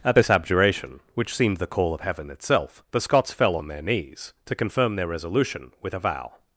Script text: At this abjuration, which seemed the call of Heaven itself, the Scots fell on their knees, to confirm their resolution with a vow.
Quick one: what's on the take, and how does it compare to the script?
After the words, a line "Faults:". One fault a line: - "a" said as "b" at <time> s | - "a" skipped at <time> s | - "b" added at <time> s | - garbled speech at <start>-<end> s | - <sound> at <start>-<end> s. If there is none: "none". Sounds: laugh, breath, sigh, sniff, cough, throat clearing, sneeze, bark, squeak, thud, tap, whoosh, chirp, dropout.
At this abjuration, which seemed the call of Heaven itself, the Scots fell on their knees, to confirm their resolution with a vow.
Faults:
none